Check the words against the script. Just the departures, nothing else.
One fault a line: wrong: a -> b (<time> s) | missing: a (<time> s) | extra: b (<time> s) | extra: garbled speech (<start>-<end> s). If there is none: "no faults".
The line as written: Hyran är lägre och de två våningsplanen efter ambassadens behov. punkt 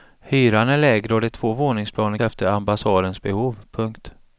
no faults